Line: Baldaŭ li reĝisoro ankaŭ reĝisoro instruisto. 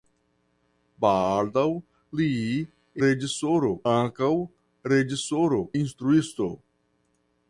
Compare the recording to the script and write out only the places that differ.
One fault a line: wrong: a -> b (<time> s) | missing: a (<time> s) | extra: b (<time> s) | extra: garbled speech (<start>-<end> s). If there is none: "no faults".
no faults